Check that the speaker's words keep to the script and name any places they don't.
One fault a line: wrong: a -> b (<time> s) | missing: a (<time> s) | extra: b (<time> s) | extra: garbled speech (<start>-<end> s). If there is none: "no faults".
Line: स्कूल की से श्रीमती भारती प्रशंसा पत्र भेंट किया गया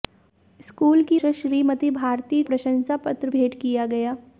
no faults